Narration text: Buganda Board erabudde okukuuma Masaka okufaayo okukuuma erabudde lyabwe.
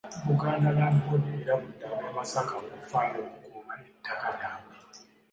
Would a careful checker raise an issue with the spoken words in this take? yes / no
yes